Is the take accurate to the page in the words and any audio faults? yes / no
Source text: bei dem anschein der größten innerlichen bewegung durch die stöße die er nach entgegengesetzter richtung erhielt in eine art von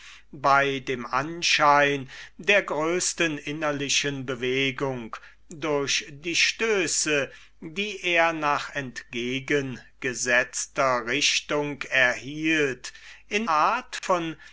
no